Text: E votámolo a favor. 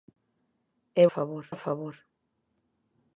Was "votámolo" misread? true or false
true